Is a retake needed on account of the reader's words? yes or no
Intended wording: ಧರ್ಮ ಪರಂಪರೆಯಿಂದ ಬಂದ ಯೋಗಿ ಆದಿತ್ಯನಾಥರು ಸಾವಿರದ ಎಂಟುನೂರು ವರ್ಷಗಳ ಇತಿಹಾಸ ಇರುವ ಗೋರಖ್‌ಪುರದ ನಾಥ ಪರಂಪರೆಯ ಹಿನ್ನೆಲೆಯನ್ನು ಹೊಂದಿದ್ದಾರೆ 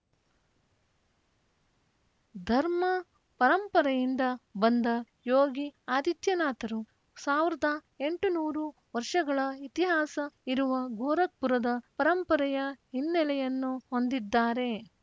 yes